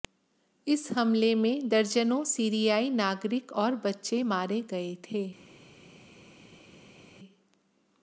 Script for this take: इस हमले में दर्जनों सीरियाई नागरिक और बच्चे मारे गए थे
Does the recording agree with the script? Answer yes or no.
yes